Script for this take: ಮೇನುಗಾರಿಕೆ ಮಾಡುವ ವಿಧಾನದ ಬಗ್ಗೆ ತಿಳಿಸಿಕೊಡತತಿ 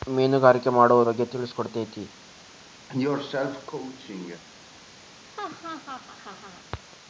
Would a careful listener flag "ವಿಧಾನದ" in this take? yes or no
yes